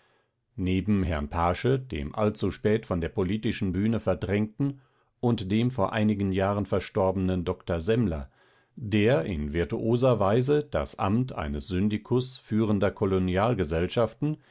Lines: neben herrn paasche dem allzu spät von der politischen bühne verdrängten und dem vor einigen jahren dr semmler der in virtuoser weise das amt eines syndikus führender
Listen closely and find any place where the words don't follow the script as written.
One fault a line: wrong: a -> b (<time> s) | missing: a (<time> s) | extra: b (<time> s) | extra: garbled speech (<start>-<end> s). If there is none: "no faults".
extra: verstorbenen (6.6 s)